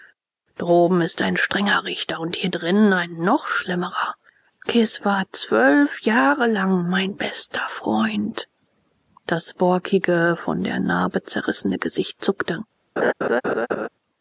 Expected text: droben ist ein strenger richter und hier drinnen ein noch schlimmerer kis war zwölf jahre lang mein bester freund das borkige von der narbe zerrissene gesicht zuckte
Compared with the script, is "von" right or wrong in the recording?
right